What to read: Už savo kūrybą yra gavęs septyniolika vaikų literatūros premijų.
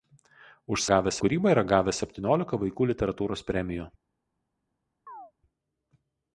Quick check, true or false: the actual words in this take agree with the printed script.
false